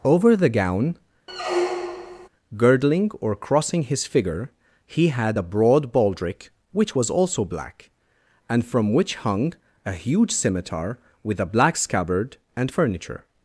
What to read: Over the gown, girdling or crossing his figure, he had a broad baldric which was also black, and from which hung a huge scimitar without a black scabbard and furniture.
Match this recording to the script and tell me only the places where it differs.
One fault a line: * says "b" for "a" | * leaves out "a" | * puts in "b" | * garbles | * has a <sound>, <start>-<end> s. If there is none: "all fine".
* has a squeak, 1.3-2.3 s
* says "with" for "without"